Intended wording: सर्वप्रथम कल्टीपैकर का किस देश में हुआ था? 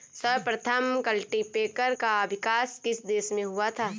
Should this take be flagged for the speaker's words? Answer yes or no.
yes